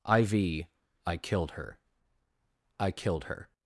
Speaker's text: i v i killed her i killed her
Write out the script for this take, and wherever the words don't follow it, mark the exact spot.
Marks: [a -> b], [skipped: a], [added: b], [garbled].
i v i killed her i killed her